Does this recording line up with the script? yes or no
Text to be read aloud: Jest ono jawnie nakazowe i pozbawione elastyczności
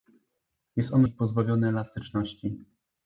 no